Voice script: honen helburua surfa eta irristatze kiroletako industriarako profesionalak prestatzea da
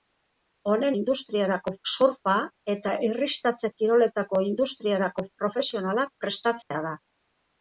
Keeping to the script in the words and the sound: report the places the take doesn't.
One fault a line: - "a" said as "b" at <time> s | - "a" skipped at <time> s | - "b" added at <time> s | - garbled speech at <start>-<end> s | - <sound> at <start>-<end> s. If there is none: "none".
- "helburua" said as "industriarako" at 1.0 s
- dropout at 6.6-6.7 s